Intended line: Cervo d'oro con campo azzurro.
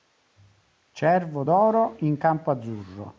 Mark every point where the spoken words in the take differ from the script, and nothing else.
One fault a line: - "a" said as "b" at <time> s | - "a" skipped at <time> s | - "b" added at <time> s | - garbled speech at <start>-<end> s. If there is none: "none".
- "con" said as "in" at 2.0 s